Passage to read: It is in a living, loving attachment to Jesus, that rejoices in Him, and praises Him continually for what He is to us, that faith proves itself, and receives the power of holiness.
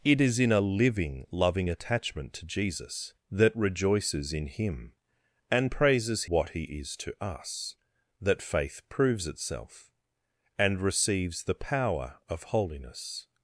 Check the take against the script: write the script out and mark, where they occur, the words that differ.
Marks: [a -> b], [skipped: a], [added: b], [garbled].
It is in a living, loving attachment to Jesus, that rejoices in Him, and praises [skipped: Him continually for] what He is to us, that faith proves itself, and receives the power of holiness.